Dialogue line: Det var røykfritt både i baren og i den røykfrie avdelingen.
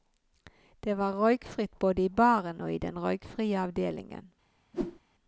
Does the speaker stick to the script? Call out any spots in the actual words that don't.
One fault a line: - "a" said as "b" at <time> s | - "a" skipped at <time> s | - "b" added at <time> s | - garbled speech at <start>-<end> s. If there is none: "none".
none